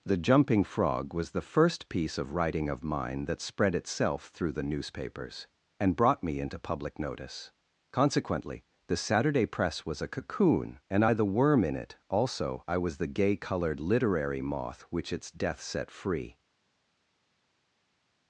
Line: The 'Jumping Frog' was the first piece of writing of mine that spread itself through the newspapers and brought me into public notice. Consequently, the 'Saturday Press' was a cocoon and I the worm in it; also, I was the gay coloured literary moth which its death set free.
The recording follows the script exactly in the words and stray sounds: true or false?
true